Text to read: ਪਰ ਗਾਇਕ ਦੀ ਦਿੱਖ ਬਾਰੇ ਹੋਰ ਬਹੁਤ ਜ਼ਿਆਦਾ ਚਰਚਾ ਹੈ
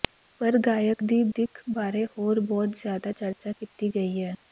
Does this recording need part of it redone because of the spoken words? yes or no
yes